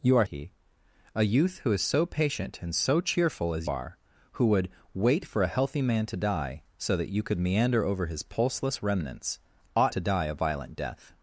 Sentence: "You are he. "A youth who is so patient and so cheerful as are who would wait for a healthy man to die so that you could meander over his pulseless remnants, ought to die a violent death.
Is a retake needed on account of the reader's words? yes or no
no